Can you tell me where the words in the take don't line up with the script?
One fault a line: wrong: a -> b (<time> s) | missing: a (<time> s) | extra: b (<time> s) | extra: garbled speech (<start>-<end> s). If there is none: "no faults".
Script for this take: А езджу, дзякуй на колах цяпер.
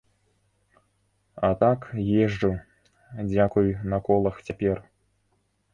extra: так (1.6 s)